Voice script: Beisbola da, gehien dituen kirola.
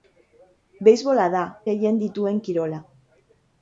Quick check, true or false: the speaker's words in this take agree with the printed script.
true